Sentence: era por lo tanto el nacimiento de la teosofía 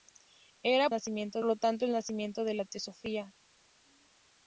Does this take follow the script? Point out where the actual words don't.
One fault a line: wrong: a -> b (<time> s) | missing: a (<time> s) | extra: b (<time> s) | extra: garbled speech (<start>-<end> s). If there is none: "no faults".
wrong: por -> nacimiento (0.9 s)